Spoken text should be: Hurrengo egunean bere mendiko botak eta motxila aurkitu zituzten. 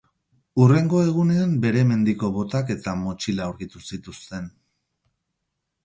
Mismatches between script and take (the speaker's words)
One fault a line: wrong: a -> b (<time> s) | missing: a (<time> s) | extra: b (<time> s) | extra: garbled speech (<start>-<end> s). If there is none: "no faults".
no faults